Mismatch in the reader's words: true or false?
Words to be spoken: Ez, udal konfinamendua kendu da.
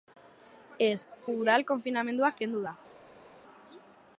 false